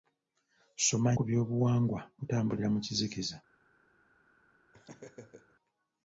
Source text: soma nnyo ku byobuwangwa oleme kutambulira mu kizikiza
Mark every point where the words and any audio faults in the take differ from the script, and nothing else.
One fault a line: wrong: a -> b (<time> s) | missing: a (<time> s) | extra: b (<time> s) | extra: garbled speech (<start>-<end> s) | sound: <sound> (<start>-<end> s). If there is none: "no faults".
missing: nnyo (1.1 s)
missing: oleme (2.0 s)
sound: laugh (4.7-5.6 s)